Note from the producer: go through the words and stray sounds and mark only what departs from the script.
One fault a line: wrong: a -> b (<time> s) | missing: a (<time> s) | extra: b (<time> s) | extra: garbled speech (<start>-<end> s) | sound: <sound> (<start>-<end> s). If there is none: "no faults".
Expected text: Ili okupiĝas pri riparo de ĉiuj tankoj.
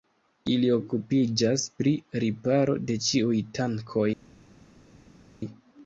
no faults